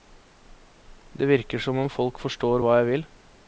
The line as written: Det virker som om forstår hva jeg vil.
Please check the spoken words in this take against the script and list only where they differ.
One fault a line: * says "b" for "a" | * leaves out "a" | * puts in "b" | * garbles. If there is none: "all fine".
* puts in "folk"